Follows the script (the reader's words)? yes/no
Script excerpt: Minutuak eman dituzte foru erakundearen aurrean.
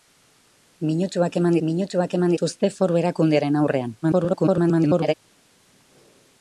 no